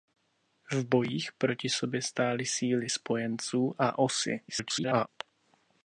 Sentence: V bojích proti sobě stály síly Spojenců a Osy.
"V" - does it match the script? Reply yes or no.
yes